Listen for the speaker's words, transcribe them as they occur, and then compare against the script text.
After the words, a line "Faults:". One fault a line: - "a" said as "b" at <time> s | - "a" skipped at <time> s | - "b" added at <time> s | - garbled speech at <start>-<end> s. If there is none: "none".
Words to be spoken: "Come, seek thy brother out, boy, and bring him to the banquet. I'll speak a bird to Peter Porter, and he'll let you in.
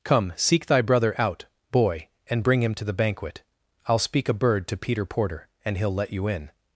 "Come, seek thy brother out, boy, and bring him to the banquet. I'll speak a bird to Peter Porter, and he'll let you in.
Faults:
none